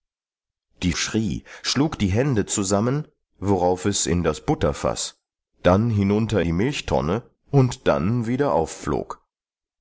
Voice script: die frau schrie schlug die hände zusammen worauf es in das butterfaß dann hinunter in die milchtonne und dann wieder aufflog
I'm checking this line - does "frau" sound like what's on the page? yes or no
no